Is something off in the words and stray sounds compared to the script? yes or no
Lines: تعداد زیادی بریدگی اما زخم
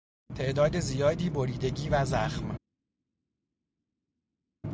yes